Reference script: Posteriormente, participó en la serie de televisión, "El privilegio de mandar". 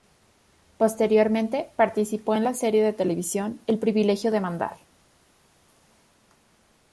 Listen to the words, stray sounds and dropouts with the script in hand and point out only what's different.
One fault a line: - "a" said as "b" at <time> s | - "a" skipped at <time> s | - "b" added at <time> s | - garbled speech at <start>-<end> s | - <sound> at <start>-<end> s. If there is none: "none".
none